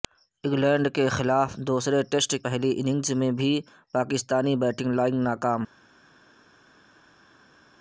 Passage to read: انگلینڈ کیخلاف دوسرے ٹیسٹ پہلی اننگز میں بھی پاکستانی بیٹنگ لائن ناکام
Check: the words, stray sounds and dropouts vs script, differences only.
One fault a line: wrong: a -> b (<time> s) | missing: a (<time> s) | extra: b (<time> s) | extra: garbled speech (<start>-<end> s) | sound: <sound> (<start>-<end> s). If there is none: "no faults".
no faults